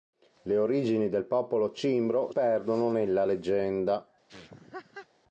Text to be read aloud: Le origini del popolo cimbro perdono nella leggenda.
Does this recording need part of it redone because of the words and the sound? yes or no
yes